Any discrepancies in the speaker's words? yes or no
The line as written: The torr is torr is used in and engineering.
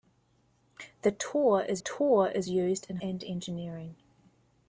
no